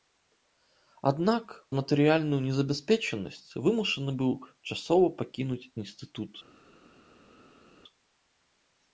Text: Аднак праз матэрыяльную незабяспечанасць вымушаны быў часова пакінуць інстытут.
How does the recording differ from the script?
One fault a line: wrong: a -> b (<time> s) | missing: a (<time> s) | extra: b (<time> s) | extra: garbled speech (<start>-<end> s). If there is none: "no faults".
missing: праз (1.4 s)